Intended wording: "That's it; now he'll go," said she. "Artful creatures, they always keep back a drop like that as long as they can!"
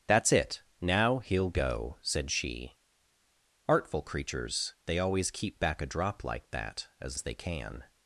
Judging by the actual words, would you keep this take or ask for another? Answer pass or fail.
fail